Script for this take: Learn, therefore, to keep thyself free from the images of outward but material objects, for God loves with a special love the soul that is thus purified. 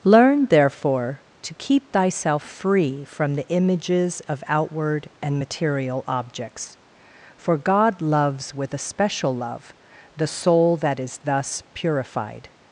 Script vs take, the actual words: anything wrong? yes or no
yes